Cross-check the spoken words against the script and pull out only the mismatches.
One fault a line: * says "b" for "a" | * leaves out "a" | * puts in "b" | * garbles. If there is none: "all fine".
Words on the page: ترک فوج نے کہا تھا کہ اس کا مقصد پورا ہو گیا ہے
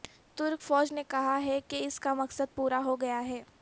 * says "ہے" for "تھا"